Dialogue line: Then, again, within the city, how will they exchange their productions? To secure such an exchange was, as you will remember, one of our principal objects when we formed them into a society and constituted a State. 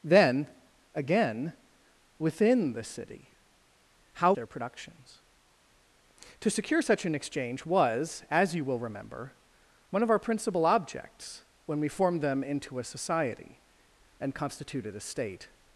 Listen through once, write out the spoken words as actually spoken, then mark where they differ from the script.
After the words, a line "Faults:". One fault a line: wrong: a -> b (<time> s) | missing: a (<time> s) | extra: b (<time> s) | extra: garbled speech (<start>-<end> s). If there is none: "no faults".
Then, again, within the city, how their productions? To secure such an exchange was, as you will remember, one of our principal objects when we formed them into a society and constituted a State.
Faults:
missing: will they exchange (4.3 s)